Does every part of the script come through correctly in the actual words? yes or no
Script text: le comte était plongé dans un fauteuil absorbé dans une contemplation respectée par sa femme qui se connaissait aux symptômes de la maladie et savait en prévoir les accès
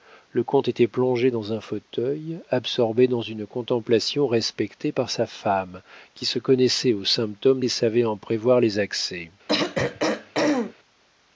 no